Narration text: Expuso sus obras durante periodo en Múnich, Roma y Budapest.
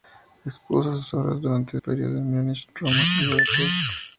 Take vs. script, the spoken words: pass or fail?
pass